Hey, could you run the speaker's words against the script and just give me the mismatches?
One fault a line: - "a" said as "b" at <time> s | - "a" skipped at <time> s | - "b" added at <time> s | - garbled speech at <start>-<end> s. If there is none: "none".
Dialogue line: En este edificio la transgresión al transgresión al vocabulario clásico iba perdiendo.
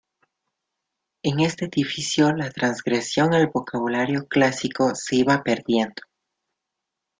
- "transgresión al" skipped at 3.5 s
- "se" added at 5.0 s